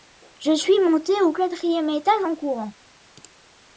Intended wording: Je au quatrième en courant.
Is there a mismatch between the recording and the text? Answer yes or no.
yes